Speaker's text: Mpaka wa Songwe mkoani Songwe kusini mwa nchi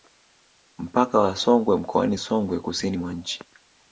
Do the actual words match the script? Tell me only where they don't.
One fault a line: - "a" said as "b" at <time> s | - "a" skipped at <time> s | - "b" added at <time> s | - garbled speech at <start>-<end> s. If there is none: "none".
none